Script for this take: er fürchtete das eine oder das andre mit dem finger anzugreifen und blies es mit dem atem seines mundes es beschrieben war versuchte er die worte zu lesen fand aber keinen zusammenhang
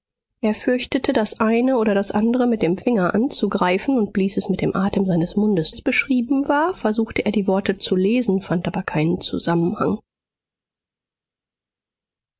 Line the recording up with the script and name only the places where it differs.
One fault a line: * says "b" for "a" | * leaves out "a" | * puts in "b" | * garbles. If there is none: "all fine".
all fine